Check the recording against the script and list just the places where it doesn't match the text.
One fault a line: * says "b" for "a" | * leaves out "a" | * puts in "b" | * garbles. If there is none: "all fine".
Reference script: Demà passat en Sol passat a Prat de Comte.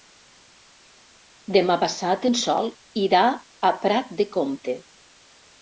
* says "irà" for "passat"